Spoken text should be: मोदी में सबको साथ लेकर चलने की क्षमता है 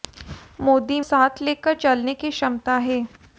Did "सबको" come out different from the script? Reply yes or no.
yes